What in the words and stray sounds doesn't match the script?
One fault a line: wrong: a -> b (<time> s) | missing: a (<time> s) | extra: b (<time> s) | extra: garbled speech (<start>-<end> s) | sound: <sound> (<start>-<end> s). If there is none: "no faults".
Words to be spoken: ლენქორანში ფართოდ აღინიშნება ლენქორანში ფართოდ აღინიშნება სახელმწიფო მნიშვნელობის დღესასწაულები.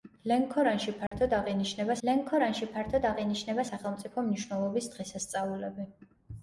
sound: dropout (1.1-1.1 s)